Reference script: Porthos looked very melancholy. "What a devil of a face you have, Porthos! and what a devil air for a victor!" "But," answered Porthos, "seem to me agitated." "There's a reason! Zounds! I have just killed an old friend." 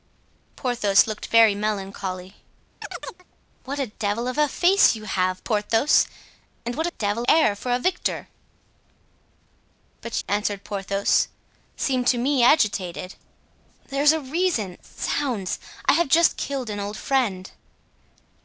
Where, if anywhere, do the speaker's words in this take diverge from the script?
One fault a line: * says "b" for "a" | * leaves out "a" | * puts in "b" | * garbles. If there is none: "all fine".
all fine